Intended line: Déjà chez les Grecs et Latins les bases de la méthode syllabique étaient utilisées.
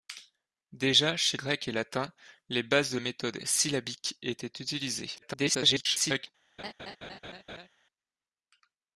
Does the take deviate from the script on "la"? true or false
true